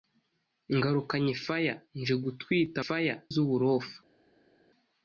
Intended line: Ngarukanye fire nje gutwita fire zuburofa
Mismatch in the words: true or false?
false